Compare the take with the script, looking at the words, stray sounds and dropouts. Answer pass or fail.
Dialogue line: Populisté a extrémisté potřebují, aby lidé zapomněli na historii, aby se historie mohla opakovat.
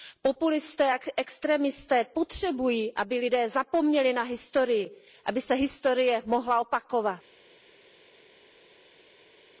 pass